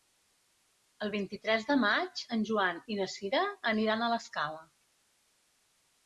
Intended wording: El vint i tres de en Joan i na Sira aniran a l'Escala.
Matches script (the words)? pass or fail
fail